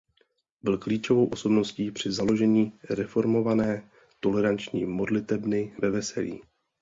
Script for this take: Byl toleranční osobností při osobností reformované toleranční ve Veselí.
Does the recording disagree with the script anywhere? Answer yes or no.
yes